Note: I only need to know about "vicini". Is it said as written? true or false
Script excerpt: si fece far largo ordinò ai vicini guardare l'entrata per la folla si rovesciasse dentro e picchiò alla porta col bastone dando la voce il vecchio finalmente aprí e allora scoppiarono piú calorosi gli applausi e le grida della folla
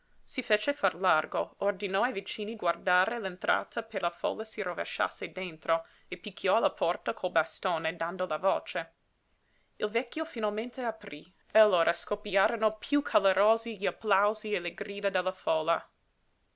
true